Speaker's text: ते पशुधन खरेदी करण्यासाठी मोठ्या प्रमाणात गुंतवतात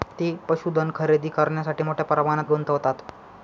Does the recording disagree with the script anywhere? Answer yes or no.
no